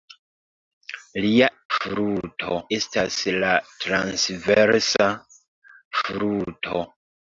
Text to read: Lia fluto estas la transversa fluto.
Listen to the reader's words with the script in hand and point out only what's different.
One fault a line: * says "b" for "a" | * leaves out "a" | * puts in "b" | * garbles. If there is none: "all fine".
all fine